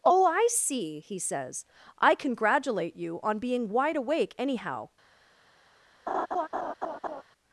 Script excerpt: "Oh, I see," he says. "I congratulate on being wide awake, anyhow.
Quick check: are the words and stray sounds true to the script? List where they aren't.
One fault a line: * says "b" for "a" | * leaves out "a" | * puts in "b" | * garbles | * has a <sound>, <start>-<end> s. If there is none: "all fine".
* puts in "you"
* has a laugh, 6.1-7.2 s